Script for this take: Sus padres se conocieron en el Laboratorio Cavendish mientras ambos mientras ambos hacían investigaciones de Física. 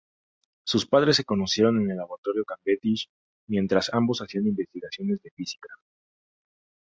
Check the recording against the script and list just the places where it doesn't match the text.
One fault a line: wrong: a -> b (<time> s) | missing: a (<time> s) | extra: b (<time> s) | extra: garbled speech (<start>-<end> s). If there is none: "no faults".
missing: mientras ambos (4.2 s)